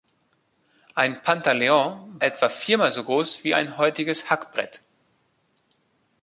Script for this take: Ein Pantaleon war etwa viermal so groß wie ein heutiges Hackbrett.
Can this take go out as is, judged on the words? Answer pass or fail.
fail